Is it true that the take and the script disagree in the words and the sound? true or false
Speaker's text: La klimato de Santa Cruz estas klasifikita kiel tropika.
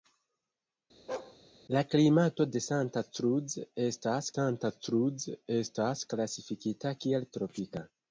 true